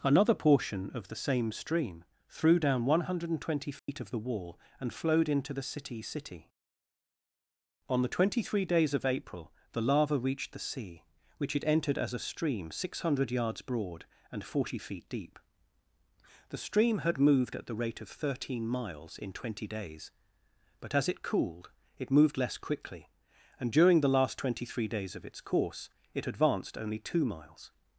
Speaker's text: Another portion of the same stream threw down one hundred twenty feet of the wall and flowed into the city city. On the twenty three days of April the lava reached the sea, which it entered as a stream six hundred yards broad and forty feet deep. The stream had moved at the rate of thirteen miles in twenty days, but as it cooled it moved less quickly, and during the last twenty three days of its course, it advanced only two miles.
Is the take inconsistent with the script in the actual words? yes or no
no